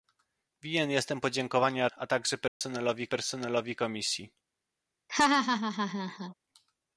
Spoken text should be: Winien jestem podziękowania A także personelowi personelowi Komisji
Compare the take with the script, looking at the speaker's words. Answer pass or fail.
pass